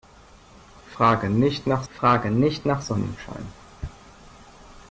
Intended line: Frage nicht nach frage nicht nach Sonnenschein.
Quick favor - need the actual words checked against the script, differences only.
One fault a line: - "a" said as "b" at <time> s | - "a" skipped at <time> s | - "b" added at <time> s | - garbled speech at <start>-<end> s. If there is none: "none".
none